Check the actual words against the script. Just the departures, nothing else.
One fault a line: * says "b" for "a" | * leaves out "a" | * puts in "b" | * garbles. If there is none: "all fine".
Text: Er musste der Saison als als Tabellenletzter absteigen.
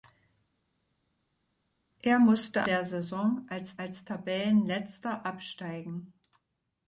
all fine